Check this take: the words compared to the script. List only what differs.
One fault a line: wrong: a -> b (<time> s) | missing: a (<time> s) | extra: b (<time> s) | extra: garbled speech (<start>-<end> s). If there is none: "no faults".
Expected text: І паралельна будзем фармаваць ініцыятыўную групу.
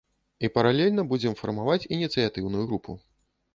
no faults